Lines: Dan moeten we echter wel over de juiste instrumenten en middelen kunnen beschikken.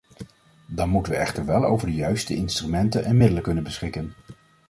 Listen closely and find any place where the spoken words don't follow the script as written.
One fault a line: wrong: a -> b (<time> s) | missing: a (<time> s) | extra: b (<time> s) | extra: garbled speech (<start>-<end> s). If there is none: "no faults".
no faults